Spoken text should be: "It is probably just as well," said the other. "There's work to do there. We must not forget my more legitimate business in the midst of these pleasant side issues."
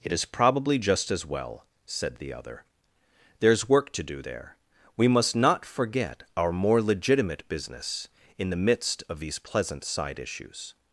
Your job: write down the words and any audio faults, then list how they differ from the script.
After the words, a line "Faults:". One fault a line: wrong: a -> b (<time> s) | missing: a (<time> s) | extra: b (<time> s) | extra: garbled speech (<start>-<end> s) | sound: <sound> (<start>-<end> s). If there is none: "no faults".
"It is probably just as well," said the other. "There's work to do there. We must not forget our more legitimate business in the midst of these pleasant side issues."
Faults:
wrong: my -> our (6.4 s)